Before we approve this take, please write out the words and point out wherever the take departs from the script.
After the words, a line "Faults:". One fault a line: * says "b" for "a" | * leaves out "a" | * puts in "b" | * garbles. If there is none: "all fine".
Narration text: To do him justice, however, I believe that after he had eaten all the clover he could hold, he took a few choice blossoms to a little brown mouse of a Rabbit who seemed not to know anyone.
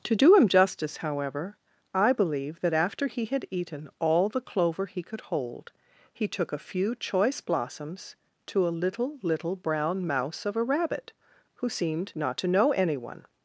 To do him justice, however, I believe that after he had eaten all the clover he could hold, he took a few choice blossoms to a little little brown mouse of a Rabbit who seemed not to know anyone.
Faults:
* puts in "little"